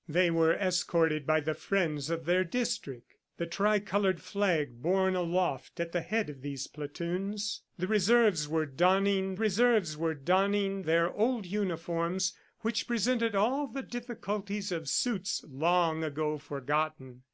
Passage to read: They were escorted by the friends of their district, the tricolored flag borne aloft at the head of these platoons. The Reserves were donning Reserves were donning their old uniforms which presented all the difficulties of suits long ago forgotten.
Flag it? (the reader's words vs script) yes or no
no